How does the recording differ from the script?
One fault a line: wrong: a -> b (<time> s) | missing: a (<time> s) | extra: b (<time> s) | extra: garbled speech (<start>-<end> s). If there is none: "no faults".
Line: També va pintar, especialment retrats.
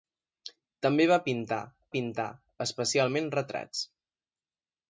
extra: pintar (1.9 s)